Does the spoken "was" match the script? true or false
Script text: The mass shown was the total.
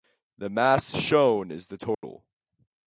false